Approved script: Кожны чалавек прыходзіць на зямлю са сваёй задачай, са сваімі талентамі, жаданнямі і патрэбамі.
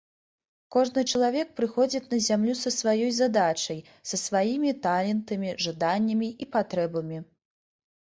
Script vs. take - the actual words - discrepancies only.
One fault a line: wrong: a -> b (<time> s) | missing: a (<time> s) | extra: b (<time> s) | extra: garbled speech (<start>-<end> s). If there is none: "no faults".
no faults